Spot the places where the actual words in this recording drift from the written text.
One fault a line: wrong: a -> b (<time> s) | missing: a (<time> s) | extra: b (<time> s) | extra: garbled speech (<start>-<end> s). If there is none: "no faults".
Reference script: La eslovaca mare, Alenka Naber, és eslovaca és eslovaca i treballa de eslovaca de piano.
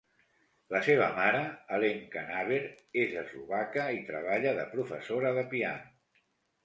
wrong: eslovaca -> seva (0.8 s)
missing: és eslovaca (3.9 s)
wrong: eslovaca -> professora (4.7 s)